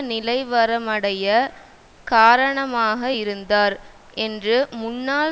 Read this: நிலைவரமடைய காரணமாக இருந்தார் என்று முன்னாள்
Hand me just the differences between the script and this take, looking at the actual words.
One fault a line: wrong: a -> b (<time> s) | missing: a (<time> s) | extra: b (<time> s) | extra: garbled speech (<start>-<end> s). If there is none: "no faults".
no faults